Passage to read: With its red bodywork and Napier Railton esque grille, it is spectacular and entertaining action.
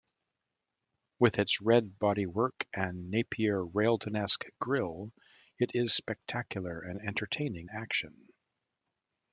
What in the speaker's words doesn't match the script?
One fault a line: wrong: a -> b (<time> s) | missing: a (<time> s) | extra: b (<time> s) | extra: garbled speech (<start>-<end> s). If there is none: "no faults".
no faults